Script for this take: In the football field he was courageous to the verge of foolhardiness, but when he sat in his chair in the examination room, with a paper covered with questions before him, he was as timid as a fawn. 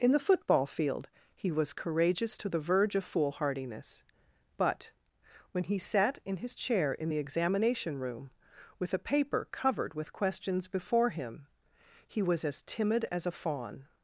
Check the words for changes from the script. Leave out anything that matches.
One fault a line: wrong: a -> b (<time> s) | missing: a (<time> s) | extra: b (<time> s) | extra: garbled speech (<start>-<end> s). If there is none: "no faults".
no faults